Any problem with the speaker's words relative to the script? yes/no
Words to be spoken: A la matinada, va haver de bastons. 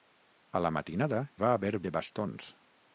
no